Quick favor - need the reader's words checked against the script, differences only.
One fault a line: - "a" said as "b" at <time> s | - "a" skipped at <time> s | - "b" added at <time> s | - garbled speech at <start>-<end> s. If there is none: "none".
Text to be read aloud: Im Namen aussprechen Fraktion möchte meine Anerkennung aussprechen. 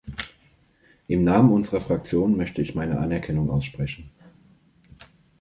- "aussprechen" said as "unserer" at 1.5 s
- "ich" added at 2.6 s